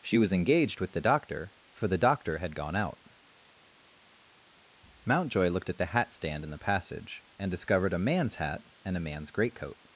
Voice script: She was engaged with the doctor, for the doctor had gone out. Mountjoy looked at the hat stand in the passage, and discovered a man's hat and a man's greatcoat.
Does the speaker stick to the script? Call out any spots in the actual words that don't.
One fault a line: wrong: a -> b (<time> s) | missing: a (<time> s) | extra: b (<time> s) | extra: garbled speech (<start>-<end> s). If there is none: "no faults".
no faults